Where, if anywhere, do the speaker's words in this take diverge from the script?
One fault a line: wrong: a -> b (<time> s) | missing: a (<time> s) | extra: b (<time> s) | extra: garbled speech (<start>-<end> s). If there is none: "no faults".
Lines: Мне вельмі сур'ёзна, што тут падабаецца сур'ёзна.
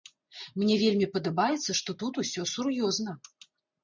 wrong: сур'ёзна -> падабаецца (1.2 s)
wrong: падабаецца -> усё (2.2 s)